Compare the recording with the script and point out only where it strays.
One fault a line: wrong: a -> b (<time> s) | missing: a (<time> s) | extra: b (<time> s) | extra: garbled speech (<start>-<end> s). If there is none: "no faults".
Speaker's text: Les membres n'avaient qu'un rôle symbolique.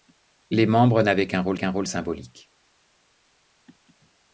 extra: qu'un rôle (1.6 s)